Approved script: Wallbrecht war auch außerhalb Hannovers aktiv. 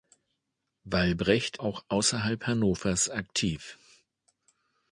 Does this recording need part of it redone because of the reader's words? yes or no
yes